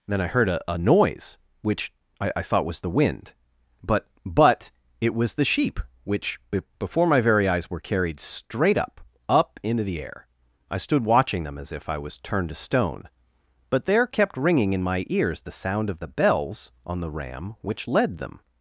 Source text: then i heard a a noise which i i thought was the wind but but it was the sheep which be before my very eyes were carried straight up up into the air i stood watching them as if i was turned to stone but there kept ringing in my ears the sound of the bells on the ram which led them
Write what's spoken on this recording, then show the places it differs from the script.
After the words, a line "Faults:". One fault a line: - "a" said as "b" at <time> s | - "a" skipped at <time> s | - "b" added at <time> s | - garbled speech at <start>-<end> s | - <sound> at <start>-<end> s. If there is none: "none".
then i heard a a noise which i i thought was the wind but but it was the sheep which be before my very eyes were carried straight up up into the air i stood watching them as if i was turned to stone but there kept ringing in my ears the sound of the bells on the ram which led them
Faults:
none